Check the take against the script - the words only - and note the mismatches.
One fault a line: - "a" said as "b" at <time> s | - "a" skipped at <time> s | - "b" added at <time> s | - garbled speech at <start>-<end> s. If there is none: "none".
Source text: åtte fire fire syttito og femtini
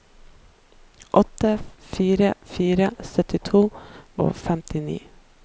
none